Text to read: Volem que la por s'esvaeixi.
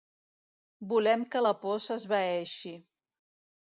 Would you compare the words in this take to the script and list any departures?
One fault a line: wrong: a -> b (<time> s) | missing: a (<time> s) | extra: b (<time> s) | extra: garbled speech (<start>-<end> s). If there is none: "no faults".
no faults